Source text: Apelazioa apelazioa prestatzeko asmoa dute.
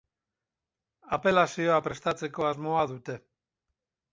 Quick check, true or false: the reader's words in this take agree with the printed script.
false